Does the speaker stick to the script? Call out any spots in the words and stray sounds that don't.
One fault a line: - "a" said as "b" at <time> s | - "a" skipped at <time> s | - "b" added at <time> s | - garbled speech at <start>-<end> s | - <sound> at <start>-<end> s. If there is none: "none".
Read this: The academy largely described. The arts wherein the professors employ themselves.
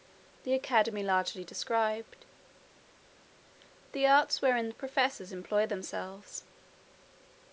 none